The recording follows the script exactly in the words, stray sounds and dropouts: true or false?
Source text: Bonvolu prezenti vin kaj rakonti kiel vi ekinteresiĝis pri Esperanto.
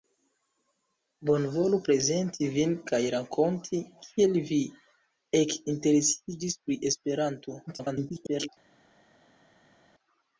false